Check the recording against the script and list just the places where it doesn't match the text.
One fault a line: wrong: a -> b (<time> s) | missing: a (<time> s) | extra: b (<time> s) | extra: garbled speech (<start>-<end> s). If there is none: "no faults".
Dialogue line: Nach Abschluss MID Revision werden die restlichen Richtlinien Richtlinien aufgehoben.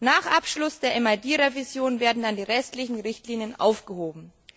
extra: der (0.8 s)
extra: dann (2.2 s)
missing: Richtlinien (3.6 s)